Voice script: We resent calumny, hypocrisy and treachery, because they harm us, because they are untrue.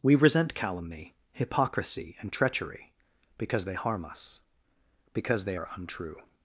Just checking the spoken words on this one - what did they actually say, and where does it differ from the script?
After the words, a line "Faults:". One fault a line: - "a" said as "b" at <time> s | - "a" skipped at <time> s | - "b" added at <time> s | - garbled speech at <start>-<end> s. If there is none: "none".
We resent calumny, hypocrisy and treachery, because they harm us, because they are untrue.
Faults:
none